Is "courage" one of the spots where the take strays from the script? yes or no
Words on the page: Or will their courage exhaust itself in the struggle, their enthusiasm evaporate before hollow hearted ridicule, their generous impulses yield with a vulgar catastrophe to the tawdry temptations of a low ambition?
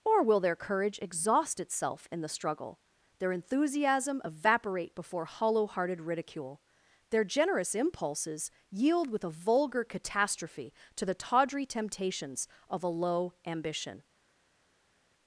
no